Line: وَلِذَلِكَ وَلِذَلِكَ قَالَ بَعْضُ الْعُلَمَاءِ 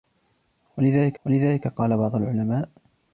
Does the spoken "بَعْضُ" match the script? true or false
true